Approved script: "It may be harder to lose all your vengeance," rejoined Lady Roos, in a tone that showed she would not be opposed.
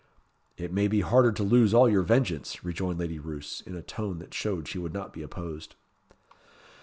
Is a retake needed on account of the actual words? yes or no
no